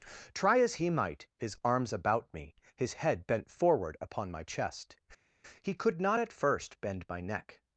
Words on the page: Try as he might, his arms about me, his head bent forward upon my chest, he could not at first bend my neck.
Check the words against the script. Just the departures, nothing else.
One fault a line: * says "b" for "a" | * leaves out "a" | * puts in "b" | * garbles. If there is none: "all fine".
all fine